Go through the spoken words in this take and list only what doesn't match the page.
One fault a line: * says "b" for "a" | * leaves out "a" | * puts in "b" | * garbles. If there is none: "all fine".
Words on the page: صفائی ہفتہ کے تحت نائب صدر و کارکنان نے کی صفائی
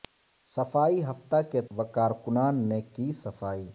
* leaves out "تحت نائب صدر"